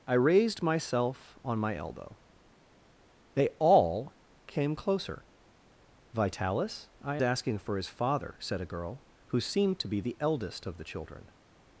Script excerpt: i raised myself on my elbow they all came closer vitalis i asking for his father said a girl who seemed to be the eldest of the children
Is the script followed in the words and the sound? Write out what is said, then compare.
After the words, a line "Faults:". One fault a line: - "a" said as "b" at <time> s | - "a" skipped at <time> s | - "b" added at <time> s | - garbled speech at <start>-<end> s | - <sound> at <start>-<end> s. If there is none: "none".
i raised myself on my elbow they all came closer vitalis i asking for his father said a girl who seemed to be the eldest of the children
Faults:
none